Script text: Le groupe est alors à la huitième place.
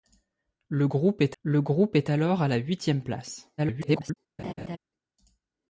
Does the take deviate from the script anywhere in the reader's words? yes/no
yes